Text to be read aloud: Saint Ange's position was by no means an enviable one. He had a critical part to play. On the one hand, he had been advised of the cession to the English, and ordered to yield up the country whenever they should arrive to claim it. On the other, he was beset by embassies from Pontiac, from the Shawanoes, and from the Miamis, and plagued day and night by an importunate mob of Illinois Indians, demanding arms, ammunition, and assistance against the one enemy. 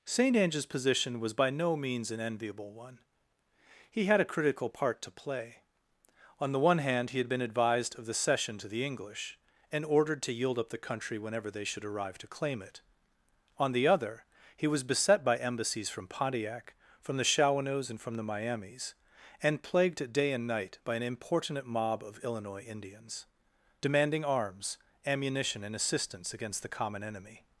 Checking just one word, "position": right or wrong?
right